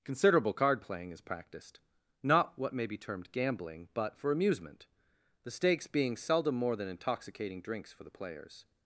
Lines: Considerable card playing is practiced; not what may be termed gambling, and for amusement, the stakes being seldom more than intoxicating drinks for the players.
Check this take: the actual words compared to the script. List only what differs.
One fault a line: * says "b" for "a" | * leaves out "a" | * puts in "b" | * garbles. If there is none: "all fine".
* says "but" for "and"